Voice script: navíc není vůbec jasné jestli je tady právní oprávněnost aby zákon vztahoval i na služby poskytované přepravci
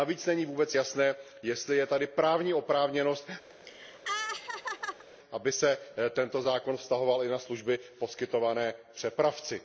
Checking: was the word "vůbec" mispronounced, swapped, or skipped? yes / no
no